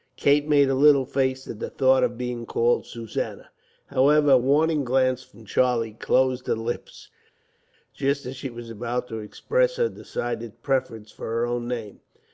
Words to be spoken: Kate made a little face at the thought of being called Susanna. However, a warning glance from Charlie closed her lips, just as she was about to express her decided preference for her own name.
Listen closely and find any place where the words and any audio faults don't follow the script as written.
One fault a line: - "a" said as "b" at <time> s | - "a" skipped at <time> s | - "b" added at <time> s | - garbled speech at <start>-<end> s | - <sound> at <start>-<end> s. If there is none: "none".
none